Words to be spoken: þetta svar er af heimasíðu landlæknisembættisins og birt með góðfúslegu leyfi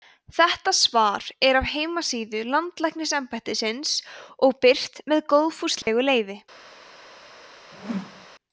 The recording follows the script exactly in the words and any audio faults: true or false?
false